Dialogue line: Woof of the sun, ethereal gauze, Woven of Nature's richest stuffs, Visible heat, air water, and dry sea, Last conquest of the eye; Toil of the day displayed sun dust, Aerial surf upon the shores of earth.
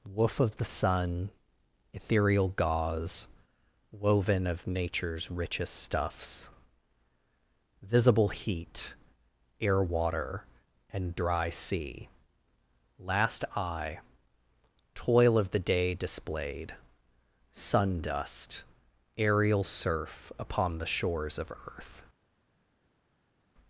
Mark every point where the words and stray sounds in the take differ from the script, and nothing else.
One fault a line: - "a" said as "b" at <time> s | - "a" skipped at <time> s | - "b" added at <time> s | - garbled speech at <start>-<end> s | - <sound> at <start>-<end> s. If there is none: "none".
- "conquest of the" skipped at 13.4 s